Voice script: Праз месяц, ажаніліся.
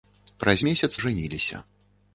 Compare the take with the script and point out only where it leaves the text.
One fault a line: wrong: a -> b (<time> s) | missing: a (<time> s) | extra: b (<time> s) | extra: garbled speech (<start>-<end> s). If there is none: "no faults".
no faults